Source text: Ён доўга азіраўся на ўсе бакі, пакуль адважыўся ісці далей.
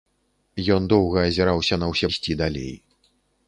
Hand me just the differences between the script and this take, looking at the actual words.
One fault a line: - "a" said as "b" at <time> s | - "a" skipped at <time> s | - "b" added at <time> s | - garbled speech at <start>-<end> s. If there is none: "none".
- "бакі пакуль адважыўся" skipped at 2.1 s